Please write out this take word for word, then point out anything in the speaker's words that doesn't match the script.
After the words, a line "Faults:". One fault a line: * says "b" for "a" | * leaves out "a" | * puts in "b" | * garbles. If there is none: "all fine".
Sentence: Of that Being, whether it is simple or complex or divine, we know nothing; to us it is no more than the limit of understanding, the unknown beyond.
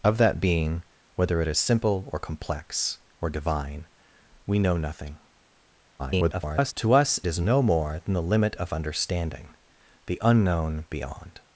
Of that Being, whether it is simple or complex or divine, we know nothing; [garbled] to us is no more than the limit of understanding, the unknown beyond.
Faults:
* garbles
* leaves out "it"